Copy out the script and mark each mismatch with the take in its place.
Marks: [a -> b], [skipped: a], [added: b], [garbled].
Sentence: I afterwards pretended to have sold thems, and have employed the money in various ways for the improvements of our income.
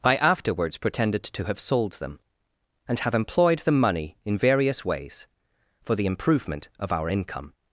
I afterwards pretended to have sold [thems, -> them] and have employed the money in various ways for the [improvements -> improvement] of our income.